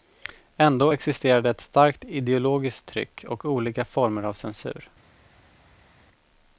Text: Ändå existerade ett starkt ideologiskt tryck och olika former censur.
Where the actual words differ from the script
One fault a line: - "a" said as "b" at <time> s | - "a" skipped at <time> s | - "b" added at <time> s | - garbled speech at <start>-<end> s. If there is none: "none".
- "av" added at 4.2 s